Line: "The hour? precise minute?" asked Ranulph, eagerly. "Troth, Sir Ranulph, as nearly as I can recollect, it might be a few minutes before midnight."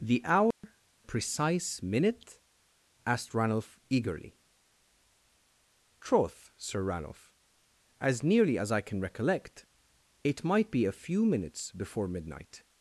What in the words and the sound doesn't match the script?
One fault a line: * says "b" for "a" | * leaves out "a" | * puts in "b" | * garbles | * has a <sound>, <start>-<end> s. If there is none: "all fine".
* has a dropout, 0.5-0.6 s